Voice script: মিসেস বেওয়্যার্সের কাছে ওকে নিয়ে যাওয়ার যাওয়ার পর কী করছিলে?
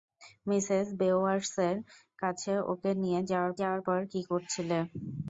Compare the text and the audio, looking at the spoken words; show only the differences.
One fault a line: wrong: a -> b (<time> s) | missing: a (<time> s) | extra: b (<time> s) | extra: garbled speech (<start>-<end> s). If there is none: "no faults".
no faults